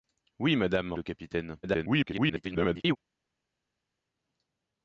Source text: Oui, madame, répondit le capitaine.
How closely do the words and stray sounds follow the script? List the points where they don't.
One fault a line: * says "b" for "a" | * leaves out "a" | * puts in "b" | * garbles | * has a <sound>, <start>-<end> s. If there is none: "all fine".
* leaves out "répondit"
* garbles